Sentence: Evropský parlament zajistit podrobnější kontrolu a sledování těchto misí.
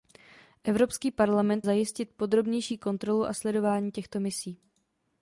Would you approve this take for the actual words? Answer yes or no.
yes